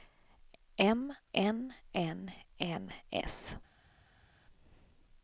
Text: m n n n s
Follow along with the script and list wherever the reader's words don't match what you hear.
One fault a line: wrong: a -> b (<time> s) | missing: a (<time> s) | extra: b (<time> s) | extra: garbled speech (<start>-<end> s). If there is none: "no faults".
no faults